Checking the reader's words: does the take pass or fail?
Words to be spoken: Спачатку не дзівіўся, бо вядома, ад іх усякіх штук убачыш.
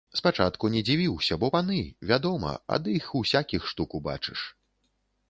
fail